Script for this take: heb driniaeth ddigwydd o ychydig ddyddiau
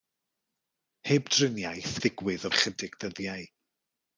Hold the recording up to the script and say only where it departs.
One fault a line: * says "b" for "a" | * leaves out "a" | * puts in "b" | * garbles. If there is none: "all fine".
all fine